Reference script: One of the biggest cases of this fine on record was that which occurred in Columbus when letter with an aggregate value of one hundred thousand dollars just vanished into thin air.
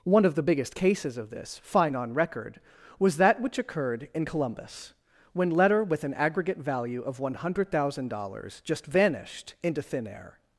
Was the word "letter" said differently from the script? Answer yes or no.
no